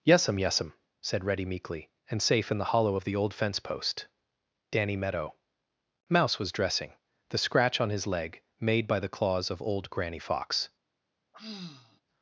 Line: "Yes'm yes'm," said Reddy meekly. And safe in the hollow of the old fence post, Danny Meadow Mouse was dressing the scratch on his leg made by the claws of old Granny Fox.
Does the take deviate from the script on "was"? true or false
false